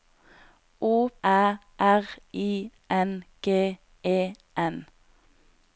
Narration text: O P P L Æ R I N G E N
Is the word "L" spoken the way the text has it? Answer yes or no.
no